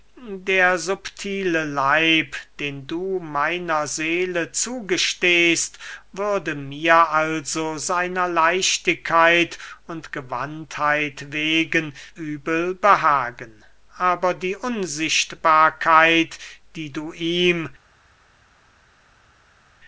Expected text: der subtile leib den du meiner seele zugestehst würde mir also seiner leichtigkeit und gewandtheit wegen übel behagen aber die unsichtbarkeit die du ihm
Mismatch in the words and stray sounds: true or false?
false